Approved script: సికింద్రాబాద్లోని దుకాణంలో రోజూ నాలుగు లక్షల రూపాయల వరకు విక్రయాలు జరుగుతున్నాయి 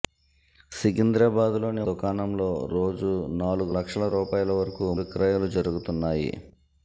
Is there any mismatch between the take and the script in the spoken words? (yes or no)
no